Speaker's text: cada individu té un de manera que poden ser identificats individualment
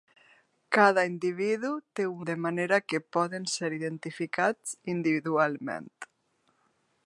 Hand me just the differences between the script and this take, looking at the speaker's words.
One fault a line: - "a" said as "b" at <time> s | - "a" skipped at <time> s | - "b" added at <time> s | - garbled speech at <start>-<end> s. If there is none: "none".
none